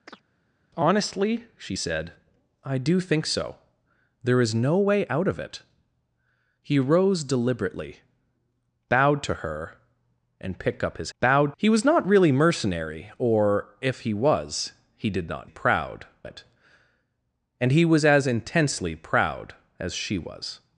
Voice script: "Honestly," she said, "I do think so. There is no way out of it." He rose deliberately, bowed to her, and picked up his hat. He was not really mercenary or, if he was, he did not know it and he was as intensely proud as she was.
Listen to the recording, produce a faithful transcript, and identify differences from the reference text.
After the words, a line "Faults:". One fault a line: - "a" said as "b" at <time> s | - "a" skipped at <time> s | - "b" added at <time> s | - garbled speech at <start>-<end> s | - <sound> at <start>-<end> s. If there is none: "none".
"Honestly," she said, "I do think so. There is no way out of it." He rose deliberately, bowed to her, and picked up his bowed. He was not really mercenary or, if he was, he did not proud it and he was as intensely proud as she was.
Faults:
- chirp at 0.1-0.2 s
- "hat" said as "bowed" at 11.2 s
- "know" said as "proud" at 15.5 s